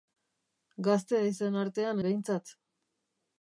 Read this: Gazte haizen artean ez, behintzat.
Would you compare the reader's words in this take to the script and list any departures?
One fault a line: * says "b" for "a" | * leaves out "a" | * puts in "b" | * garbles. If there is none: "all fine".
* leaves out "ez"